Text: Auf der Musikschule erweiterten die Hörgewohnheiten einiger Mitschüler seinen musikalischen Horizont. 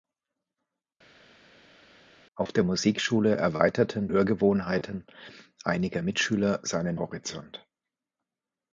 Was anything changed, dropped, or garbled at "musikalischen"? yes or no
yes